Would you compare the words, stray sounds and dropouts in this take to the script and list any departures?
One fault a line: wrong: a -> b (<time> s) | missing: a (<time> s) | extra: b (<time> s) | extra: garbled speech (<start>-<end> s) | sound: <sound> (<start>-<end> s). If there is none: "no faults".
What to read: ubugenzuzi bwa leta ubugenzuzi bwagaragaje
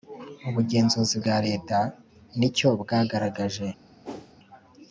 wrong: ubugenzuzi -> nicyo (2.4 s)
sound: whoosh (4.0-4.3 s)